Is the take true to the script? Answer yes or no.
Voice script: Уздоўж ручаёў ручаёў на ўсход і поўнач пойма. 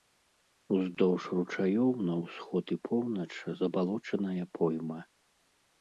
no